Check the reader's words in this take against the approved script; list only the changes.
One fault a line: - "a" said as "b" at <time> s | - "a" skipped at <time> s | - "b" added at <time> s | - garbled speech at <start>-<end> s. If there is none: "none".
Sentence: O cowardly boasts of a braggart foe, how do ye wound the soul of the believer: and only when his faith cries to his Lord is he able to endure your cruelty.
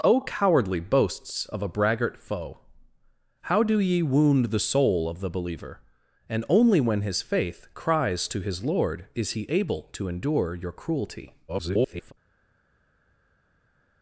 - garbled speech at 11.5-12.1 s